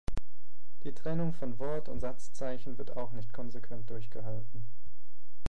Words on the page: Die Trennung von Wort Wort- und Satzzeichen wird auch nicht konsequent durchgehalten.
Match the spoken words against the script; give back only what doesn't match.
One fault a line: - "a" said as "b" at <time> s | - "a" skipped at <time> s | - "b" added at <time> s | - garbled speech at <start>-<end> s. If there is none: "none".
- "Wort" skipped at 1.9 s